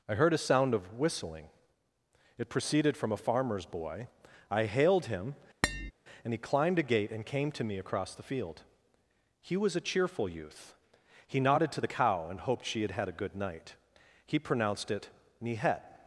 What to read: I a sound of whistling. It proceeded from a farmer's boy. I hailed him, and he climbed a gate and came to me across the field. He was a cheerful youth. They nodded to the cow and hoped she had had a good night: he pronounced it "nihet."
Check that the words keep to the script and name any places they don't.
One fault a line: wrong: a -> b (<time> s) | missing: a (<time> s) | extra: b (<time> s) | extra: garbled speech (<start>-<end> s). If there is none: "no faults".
extra: heard (0.1 s)
wrong: They -> He (11.3 s)